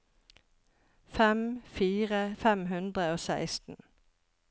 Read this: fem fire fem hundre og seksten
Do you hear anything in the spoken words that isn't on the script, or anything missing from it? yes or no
no